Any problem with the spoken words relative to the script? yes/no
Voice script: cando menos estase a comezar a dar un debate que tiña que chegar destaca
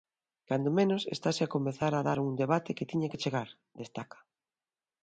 no